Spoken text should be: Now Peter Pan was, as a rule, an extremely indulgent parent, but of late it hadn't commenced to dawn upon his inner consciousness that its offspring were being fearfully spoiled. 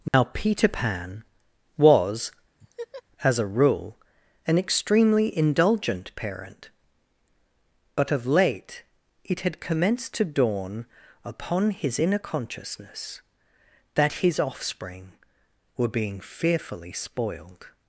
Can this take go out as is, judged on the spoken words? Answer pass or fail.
fail